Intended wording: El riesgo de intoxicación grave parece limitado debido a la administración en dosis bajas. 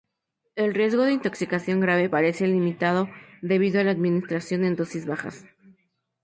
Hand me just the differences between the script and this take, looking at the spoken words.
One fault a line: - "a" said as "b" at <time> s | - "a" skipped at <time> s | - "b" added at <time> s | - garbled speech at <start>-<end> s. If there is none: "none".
none